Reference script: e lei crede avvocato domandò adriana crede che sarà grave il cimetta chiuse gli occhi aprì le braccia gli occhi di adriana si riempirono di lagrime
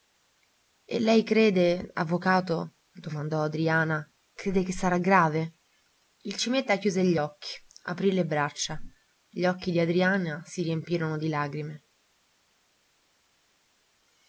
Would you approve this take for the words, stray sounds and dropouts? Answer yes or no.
yes